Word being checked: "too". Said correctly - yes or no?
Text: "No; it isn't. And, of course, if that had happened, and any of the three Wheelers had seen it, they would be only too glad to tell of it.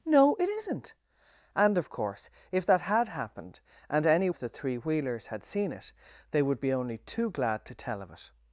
yes